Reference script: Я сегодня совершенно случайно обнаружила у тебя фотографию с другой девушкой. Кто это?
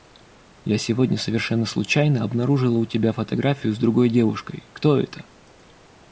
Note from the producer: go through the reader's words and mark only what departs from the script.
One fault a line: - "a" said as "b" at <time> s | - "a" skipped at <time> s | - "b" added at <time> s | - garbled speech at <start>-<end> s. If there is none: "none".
none